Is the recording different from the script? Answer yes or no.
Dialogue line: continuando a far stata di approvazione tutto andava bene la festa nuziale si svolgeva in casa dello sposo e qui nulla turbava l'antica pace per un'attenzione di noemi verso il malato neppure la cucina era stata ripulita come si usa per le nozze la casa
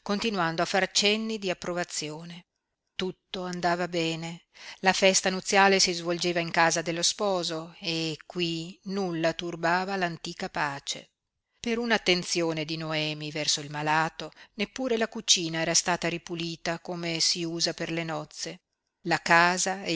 yes